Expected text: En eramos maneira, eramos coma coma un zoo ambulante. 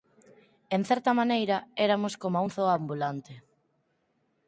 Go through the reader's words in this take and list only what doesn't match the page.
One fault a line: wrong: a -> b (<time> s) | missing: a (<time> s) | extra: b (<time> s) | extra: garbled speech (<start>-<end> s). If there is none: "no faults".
wrong: eramos -> certa (0.9 s)
missing: coma (2.5 s)